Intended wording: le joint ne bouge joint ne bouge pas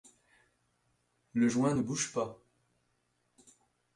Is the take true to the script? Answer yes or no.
no